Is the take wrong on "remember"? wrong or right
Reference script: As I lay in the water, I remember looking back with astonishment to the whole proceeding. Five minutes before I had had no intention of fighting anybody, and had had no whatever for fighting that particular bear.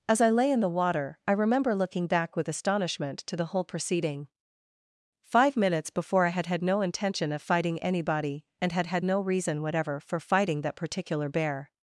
right